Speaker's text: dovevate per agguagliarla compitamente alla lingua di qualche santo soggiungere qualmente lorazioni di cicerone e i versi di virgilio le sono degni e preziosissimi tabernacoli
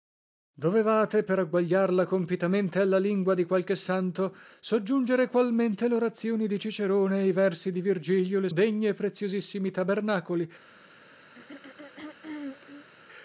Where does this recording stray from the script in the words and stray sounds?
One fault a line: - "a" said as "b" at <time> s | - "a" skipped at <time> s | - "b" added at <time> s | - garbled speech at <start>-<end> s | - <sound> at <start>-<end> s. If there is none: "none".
- "sono" skipped at 8.5 s
- throat clearing at 11.3-12.9 s